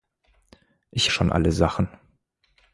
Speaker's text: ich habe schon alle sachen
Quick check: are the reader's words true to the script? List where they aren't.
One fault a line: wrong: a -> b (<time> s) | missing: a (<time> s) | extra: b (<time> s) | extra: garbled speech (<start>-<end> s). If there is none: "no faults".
missing: habe (1.1 s)